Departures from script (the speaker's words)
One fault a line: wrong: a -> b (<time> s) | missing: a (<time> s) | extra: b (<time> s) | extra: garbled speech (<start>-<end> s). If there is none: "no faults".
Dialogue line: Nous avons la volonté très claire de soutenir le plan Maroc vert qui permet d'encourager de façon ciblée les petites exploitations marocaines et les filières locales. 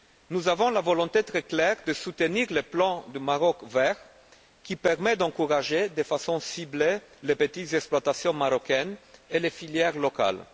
no faults